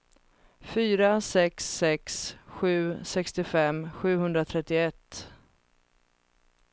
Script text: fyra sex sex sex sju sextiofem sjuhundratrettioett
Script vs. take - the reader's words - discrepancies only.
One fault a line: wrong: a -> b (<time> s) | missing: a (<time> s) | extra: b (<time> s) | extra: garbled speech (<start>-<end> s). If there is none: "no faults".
missing: sex (2.4 s)